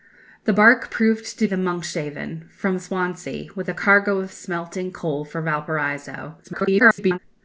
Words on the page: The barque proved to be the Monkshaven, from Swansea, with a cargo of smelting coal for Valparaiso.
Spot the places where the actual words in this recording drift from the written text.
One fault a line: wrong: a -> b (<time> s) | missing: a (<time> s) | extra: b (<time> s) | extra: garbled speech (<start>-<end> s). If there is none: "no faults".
missing: be (1.5 s)
extra: garbled speech (6.4-7.2 s)